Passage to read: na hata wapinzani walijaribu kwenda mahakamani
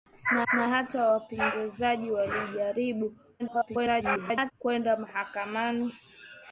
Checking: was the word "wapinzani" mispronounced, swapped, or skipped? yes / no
no